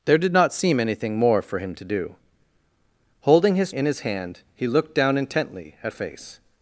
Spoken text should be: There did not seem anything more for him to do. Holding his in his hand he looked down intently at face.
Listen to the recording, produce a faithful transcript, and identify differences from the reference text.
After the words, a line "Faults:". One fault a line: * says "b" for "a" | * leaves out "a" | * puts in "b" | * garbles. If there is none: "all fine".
There did not seem anything more for him to do. Holding his in his hand he looked down intently at face.
Faults:
all fine